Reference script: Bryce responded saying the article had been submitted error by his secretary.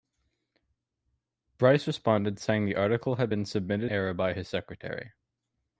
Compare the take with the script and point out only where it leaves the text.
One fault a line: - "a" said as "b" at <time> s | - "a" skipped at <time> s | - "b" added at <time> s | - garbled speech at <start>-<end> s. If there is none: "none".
none